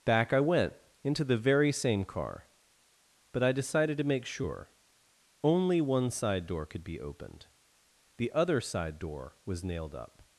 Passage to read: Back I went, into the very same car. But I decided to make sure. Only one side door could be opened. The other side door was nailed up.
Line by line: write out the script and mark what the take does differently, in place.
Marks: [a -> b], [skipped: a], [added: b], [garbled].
Back I went, into the very same car. But I decided to make sure. Only one side door could be opened. The other side door was nailed up.